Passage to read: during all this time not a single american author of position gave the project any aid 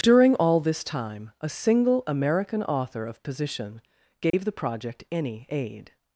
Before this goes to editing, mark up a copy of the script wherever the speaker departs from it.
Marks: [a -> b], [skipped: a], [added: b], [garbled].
during all this time [skipped: not] a single american author of position gave the project any aid